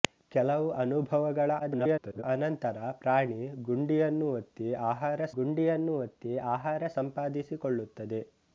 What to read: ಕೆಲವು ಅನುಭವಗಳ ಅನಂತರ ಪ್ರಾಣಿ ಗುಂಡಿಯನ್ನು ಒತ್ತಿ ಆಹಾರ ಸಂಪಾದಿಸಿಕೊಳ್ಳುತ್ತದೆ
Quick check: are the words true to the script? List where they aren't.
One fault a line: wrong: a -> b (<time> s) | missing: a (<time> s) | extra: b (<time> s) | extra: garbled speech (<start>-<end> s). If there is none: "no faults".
extra: garbled speech (1.6-2.2 s)
extra: ಗುಂಡಿಯನ್ನು ಒತ್ತಿ ಆಹಾರ (5.4 s)